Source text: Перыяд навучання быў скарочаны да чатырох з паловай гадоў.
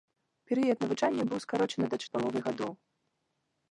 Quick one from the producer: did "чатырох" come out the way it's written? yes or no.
no